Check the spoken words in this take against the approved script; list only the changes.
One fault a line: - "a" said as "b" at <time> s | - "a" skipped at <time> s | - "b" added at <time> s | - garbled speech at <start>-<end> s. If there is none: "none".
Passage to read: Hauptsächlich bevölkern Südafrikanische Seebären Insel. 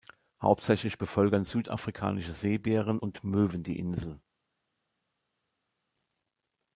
- "und Möwen die" added at 3.0 s